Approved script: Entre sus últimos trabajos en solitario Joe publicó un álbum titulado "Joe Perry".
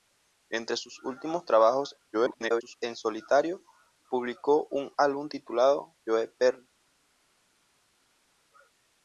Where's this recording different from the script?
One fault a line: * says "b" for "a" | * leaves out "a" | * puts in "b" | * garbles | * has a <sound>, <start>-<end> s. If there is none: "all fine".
* garbles
* leaves out "Joe"